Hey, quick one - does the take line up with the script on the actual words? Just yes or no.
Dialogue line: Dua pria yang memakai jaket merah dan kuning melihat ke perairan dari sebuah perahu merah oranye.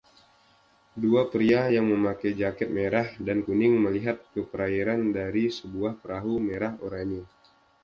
yes